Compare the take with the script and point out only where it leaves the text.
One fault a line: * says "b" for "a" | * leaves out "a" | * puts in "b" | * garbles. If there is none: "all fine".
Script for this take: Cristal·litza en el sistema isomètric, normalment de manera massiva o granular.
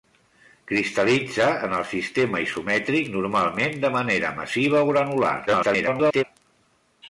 * garbles